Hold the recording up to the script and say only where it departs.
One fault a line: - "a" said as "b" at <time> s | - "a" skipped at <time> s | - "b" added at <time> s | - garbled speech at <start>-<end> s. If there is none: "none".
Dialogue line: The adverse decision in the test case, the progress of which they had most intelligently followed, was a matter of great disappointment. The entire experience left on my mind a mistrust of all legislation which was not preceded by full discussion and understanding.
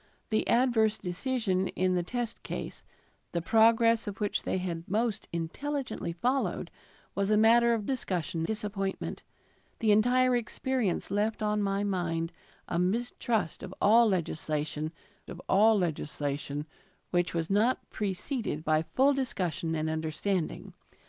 - "great" said as "discussion" at 7.8 s
- "of all legislation" added at 15.3 s